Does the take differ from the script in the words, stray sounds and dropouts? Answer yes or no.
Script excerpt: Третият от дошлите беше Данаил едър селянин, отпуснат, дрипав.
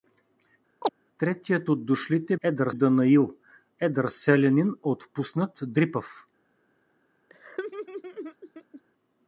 yes